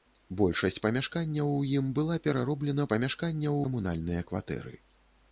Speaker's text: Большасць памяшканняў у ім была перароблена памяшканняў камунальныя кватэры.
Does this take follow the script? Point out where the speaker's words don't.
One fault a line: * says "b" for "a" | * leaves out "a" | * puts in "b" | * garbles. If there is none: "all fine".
all fine